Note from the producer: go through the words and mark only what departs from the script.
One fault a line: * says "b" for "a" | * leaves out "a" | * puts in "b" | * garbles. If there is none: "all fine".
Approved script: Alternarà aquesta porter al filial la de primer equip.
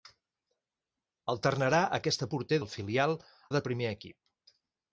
all fine